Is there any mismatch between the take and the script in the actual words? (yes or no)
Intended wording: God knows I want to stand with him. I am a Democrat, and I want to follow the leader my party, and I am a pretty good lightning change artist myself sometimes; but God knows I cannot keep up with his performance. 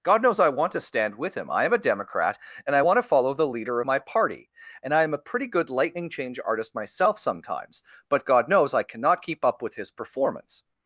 no